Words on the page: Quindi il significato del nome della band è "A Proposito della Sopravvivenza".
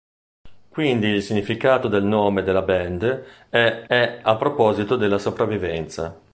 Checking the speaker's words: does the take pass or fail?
fail